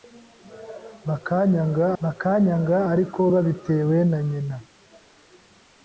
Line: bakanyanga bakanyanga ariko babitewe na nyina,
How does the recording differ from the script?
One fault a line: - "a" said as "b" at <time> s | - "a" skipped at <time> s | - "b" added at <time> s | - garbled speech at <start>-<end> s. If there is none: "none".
none